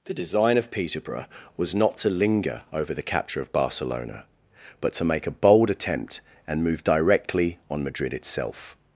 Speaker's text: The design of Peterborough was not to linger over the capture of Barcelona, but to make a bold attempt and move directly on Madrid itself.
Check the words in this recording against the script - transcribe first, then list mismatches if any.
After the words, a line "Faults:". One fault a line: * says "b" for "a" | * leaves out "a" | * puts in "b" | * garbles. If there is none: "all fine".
The design of Peterborough was not to linger over the capture of Barcelona, but to make a bold attempt and move directly on Madrid itself.
Faults:
all fine